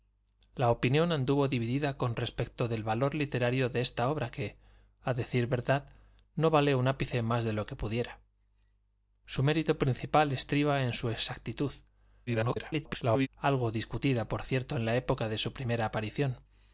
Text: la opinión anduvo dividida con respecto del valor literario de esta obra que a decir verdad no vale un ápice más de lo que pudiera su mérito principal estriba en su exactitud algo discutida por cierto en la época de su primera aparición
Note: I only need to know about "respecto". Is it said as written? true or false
true